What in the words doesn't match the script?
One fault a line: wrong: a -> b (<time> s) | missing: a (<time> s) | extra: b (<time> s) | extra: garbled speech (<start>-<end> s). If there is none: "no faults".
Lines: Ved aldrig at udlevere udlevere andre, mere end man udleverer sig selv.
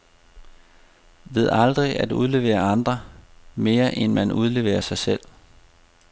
missing: udlevere (2.6 s)